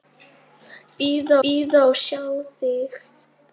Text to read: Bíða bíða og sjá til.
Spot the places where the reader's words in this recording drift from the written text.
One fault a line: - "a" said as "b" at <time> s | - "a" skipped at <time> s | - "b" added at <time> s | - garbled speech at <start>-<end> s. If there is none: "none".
none